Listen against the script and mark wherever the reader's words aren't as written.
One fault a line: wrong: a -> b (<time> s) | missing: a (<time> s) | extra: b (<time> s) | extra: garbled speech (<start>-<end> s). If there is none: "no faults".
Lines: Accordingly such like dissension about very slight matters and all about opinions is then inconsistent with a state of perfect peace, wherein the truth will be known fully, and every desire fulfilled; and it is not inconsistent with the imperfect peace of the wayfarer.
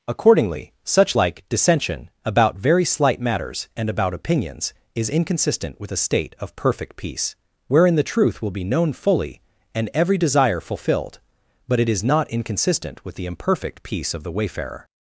missing: all (3.9 s)
missing: then (5.1 s)
wrong: and -> but (11.7 s)